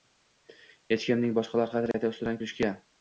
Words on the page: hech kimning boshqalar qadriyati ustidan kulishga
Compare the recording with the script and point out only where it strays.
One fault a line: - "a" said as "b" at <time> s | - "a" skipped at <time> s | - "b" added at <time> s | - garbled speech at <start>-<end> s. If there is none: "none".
none